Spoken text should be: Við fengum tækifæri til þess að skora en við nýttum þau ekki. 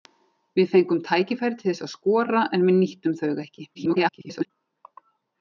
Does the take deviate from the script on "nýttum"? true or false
false